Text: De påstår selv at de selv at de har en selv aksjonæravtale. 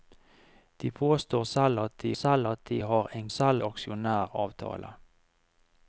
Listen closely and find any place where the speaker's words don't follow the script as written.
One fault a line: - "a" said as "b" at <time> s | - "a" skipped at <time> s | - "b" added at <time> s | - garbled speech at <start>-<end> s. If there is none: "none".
none